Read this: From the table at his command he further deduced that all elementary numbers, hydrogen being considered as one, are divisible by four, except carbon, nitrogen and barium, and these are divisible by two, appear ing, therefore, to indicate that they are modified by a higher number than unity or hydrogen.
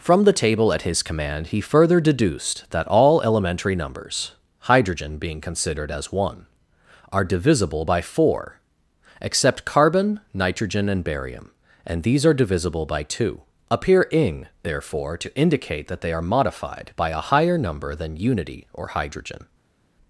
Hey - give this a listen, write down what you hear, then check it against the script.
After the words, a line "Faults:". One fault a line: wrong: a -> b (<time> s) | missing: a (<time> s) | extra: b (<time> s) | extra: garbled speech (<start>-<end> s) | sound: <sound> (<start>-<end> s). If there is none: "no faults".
From the table at his command he further deduced that all elementary numbers, hydrogen being considered as one, are divisible by four, except carbon, nitrogen and barium, and these are divisible by two, appear ing, therefore, to indicate that they are modified by a higher number than unity or hydrogen.
Faults:
no faults